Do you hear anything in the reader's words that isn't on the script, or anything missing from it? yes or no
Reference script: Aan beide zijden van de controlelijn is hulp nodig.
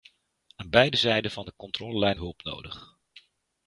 yes